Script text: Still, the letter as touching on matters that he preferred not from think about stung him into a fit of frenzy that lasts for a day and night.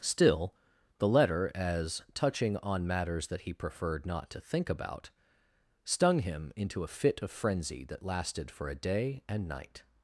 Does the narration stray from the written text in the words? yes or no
yes